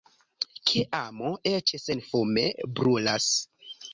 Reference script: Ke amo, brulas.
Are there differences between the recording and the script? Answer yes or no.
yes